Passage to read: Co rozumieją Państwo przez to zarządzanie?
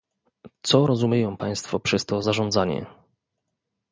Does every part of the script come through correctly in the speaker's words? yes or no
yes